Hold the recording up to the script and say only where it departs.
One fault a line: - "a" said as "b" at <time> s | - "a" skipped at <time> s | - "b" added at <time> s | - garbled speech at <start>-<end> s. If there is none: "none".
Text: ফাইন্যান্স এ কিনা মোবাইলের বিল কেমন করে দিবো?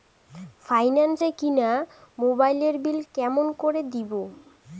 none